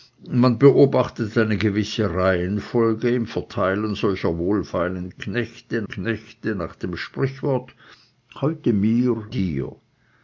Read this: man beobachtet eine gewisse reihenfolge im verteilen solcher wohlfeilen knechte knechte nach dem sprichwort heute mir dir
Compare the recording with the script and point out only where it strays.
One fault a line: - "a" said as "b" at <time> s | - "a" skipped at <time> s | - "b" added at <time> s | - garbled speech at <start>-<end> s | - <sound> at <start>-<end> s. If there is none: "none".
none